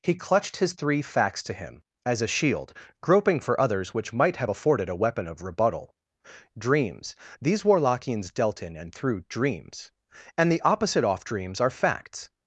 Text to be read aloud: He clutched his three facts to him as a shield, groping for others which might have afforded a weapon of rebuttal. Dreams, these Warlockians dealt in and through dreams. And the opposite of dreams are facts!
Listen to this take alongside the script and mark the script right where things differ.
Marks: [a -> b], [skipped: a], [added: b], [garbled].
He clutched his three facts to him as a shield, groping for others which might have afforded a weapon of rebuttal. Dreams, these Warlockians dealt in and through dreams. And the opposite [of -> off] dreams are facts!